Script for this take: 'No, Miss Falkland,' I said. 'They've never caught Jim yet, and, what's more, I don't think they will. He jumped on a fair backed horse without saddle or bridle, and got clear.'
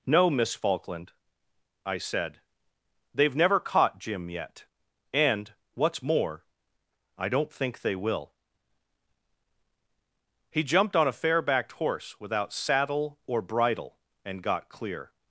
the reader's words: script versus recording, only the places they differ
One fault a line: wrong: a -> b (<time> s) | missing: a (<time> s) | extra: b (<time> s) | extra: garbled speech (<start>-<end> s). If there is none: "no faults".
no faults